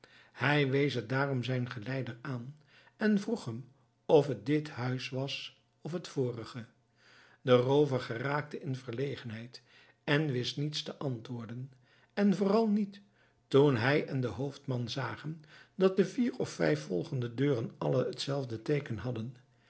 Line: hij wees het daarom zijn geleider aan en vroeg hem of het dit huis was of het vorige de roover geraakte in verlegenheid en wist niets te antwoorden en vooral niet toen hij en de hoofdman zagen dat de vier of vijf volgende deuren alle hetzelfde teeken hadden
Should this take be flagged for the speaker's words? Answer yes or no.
no